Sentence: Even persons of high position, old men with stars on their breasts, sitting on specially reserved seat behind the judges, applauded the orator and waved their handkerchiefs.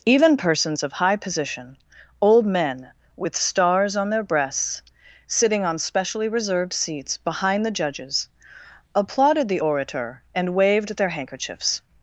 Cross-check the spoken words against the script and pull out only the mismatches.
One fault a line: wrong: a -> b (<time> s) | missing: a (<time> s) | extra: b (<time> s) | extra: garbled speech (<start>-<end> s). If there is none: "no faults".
wrong: seat -> seats (6.7 s)